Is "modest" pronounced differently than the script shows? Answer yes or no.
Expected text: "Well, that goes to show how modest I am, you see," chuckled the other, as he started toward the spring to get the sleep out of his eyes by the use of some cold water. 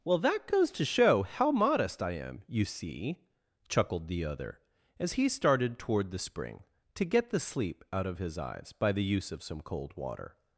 no